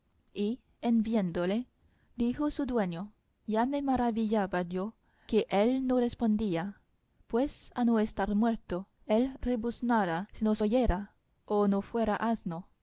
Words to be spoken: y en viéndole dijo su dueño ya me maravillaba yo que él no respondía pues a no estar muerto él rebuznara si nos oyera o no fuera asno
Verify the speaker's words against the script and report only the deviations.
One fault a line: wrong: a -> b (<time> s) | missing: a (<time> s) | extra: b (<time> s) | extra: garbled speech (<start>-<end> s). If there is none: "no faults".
no faults